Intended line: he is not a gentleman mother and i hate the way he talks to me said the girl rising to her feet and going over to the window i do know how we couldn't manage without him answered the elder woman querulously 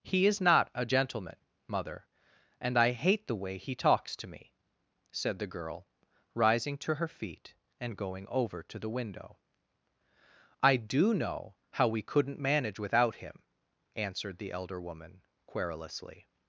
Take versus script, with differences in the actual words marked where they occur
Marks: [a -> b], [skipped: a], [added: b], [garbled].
he is not a gentleman mother and i hate the way he talks to me said the girl rising to her feet and going over to the window i do know how we couldn't manage without him answered the elder woman querulously